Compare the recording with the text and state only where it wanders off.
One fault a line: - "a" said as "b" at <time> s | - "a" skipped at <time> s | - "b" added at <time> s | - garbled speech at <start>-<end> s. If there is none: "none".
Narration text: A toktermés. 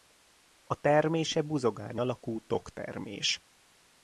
- "termése buzogány alakú" added at 0.8 s